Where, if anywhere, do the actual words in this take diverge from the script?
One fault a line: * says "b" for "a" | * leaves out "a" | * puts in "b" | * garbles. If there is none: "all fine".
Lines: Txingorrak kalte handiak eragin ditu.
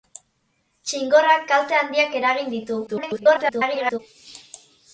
* garbles